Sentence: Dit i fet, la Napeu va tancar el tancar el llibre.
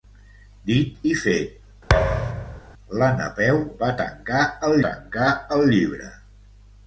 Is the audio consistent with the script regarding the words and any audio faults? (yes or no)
no